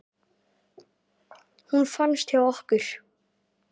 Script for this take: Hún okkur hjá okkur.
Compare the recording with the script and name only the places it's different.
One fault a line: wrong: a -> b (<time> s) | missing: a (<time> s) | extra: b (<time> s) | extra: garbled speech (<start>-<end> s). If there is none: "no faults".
wrong: okkur -> fannst (1.9 s)